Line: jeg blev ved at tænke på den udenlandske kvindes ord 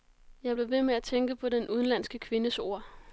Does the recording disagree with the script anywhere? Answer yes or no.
yes